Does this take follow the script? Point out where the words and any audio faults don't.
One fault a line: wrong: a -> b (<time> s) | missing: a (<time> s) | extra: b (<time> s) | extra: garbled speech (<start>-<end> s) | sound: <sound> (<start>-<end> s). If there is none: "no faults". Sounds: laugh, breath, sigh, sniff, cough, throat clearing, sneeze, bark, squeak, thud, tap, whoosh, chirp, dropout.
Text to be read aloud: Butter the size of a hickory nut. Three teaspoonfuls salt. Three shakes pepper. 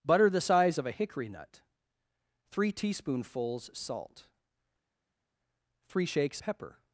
no faults